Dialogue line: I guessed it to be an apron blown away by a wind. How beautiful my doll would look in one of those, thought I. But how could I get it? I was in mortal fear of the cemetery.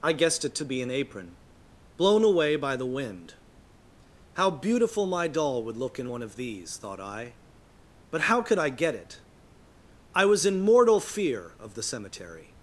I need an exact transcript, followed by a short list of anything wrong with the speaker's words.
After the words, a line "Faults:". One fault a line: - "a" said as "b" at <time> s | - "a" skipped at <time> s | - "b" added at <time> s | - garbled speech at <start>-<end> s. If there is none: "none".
I guessed it to be an apron blown away by the wind. How beautiful my doll would look in one of these, thought I. But how could I get it? I was in mortal fear of the cemetery.
Faults:
- "a" said as "the" at 2.8 s
- "those" said as "these" at 6.4 s